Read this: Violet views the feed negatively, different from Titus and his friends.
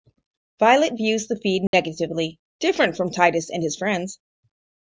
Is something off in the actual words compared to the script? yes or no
no